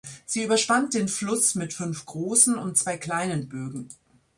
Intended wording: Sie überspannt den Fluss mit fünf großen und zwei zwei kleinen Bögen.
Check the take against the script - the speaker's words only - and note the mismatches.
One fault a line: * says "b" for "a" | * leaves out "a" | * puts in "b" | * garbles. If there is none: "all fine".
* leaves out "zwei"